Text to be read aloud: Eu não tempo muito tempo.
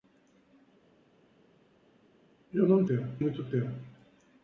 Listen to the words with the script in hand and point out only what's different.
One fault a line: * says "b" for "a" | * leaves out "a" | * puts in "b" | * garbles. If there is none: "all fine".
all fine